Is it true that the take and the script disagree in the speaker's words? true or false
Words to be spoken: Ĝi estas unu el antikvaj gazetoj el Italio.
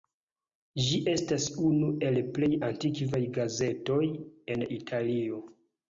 true